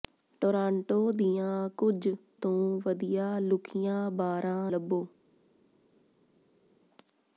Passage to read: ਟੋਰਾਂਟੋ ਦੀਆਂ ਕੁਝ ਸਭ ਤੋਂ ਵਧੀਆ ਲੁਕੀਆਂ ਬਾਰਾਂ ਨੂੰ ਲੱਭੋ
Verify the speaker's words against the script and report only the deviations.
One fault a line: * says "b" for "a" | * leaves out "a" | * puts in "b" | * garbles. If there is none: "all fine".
* leaves out "ਸਭ"
* leaves out "ਨੂੰ"